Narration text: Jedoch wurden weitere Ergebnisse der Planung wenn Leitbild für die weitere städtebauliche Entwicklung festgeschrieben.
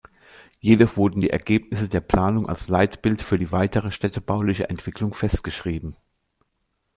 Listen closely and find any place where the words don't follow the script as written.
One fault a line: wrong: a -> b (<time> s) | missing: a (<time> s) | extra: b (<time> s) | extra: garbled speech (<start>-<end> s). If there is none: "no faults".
wrong: weitere -> die (1.2 s)
wrong: wenn -> als (2.5 s)